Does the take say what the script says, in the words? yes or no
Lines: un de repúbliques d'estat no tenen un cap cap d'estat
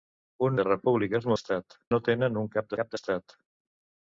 yes